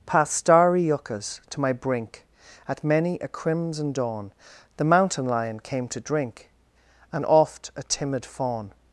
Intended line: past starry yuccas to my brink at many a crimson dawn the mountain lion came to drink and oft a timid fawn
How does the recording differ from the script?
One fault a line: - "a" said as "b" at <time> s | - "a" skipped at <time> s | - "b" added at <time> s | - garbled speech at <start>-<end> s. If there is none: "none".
none